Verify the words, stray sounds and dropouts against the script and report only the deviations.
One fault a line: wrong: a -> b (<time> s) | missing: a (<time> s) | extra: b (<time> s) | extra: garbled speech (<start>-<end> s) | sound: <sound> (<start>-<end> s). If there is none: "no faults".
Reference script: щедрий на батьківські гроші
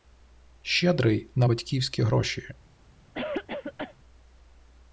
sound: cough (3.1-4.0 s)